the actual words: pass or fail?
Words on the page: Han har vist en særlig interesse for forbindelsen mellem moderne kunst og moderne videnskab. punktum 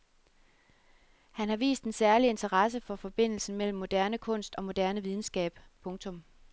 pass